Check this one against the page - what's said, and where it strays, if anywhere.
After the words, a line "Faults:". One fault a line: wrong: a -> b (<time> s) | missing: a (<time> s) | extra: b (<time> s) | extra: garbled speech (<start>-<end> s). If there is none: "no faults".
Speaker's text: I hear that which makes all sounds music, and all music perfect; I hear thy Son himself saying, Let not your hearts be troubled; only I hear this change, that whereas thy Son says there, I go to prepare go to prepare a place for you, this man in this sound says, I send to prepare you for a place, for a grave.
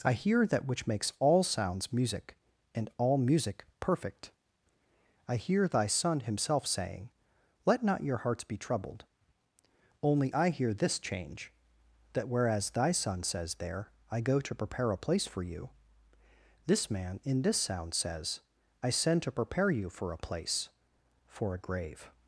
I hear that which makes all sounds music, and all music perfect; I hear thy Son himself saying, Let not your hearts be troubled; only I hear this change, that whereas thy Son says there, I go to prepare a place for you, this man in this sound says, I send to prepare you for a place, for a grave.
Faults:
missing: go to prepare (14.9 s)